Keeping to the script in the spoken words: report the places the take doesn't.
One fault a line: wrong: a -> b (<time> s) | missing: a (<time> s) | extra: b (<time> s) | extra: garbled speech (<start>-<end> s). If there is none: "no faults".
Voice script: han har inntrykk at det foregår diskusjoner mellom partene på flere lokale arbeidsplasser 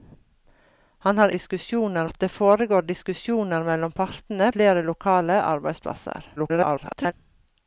wrong: inntrykk -> diskusjoner (1.4 s)
missing: på (4.5 s)
extra: garbled speech (6.4-7.1 s)